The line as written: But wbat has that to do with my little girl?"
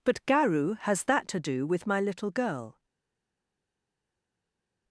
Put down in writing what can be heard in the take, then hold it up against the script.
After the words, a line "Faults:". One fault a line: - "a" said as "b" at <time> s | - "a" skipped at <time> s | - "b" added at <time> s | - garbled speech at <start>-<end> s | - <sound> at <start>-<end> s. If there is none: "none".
But garu has that to do with my little girl?"
Faults:
- "wbat" said as "garu" at 0.2 s